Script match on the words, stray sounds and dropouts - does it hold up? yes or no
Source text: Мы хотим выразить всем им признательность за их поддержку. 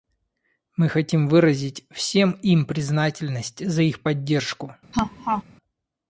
no